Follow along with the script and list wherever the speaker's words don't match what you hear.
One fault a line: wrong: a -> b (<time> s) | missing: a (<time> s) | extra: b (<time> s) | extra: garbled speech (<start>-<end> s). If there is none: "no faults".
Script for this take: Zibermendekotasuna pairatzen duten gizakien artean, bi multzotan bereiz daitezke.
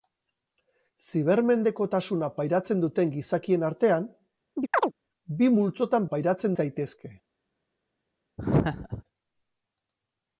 wrong: bereiz -> pairatzen (6.1 s)